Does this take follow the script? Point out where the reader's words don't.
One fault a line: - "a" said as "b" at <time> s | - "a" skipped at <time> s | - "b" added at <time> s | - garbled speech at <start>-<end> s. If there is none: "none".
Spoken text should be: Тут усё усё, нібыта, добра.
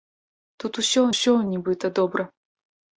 none